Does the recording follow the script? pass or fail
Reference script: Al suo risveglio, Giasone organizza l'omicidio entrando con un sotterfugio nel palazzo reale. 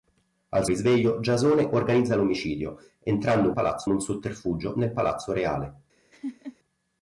fail